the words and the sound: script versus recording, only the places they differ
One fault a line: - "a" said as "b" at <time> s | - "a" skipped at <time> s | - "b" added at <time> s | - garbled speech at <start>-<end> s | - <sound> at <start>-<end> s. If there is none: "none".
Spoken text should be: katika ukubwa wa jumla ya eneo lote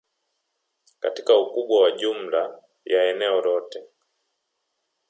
none